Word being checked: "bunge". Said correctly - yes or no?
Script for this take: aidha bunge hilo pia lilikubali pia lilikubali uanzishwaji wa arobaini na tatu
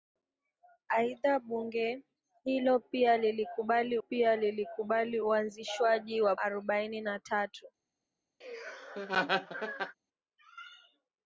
yes